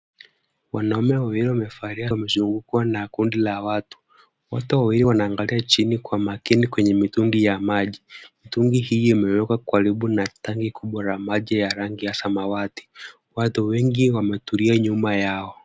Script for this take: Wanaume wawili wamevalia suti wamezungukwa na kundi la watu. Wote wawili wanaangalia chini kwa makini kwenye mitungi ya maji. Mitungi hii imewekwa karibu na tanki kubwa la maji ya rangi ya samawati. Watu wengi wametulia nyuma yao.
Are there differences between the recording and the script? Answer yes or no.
yes